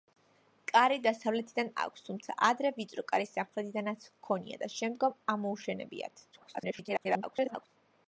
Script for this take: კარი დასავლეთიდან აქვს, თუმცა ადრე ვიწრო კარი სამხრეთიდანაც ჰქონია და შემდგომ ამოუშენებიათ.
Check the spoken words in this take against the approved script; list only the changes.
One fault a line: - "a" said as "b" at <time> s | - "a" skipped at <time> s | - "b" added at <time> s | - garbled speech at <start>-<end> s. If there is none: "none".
- garbled speech at 6.3-7.7 s